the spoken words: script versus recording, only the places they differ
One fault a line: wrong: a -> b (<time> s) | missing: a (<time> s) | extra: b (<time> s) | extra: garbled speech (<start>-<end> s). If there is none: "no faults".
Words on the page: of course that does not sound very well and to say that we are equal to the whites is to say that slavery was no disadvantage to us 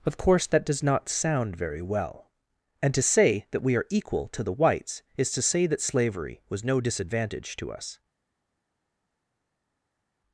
no faults